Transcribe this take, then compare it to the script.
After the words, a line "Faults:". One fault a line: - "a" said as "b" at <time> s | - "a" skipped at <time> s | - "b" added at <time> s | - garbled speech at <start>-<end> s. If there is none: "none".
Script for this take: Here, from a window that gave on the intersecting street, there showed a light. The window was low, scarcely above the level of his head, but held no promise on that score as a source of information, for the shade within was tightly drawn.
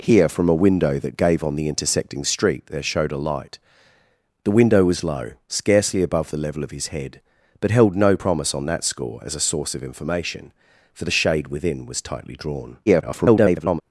Here, from a window that gave on the intersecting street, there showed a light. The window was low, scarcely above the level of his head, but held no promise on that score as a source of information, for the shade within was tightly drawn. [garbled]
Faults:
- garbled speech at 12.9-13.8 s